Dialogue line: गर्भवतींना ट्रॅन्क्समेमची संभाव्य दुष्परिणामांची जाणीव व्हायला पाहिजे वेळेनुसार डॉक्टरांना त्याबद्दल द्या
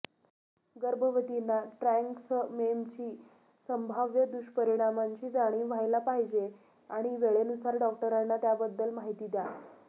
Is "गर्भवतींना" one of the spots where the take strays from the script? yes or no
no